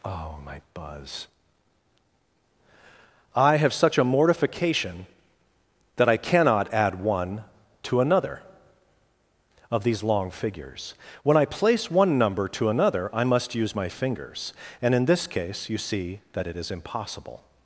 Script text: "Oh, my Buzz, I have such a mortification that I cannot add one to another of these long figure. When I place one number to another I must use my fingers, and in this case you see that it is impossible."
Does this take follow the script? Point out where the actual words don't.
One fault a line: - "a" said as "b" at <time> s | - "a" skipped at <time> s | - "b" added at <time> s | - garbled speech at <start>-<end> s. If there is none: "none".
- "figure" said as "figures" at 10.3 s